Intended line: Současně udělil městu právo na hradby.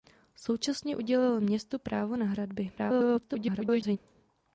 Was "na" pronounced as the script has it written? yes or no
yes